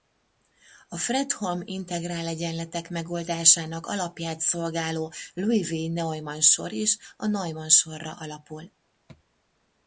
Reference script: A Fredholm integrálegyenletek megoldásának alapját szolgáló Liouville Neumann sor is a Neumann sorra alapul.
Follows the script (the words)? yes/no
yes